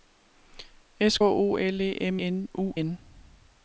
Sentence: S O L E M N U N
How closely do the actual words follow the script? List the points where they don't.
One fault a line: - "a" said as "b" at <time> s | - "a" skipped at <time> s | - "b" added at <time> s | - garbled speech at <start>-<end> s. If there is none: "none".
none